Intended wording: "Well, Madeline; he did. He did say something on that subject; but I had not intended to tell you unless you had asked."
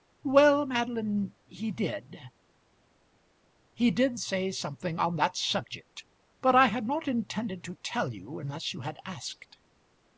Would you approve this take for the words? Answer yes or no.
yes